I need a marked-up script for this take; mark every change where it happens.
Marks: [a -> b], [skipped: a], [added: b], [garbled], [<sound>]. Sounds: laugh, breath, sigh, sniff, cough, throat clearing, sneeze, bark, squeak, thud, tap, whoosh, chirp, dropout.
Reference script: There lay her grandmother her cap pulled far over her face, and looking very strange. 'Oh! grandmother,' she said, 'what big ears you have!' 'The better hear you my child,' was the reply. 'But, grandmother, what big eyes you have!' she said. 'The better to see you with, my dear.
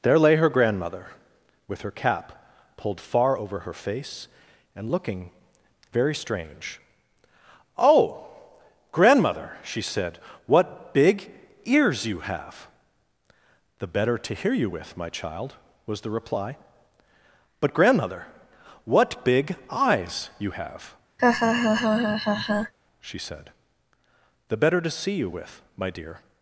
There lay her grandmother [added: with] her cap pulled far over her face, and looking very strange. 'Oh! grandmother,' she said, 'what big ears you have!' 'The better [added: to] hear you [added: with] my child,' was the reply. 'But, grandmother, what big eyes you have!' [laugh] she said. 'The better to see you with, my dear.